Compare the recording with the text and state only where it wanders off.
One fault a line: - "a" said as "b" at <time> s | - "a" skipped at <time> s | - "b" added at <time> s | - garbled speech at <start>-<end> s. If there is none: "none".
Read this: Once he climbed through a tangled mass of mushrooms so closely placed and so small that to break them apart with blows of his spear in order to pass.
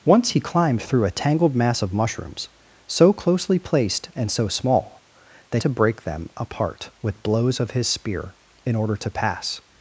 none